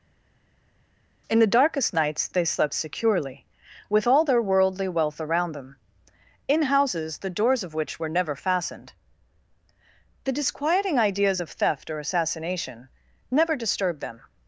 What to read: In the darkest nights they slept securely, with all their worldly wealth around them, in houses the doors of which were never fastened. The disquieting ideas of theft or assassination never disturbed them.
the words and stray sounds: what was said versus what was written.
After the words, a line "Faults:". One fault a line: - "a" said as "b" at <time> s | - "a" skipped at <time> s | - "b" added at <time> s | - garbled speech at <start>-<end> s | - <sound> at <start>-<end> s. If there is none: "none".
In the darkest nights they slept securely, with all their worldly wealth around them, in houses the doors of which were never fastened. The disquieting ideas of theft or assassination never disturbed them.
Faults:
none